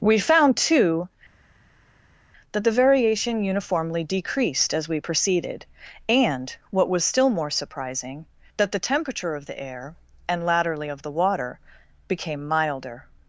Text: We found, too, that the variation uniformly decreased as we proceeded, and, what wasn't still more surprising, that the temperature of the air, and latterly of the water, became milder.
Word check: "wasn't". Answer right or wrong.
wrong